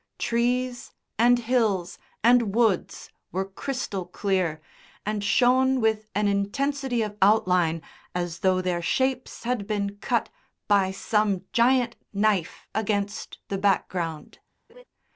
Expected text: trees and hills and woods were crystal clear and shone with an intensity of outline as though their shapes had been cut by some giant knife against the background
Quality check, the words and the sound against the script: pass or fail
fail